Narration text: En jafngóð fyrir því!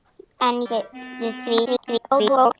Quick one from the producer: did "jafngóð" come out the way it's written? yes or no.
no